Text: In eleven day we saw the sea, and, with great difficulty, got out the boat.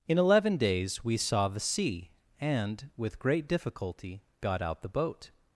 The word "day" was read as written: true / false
false